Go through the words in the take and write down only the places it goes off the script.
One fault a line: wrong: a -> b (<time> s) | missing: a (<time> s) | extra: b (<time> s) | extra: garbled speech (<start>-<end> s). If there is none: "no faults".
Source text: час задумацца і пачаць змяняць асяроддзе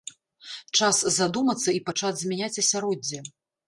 no faults